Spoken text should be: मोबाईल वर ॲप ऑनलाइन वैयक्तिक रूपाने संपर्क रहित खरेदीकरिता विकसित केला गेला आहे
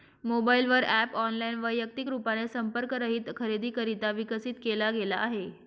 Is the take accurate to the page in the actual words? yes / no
yes